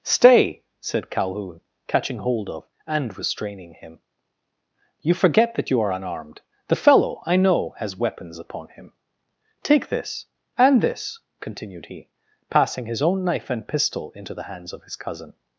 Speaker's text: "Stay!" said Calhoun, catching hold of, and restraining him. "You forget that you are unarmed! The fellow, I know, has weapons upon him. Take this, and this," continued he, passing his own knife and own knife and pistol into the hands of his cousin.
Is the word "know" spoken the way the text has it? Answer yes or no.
yes